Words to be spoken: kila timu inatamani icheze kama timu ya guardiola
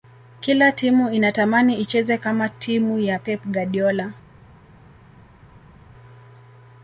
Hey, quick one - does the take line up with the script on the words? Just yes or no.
no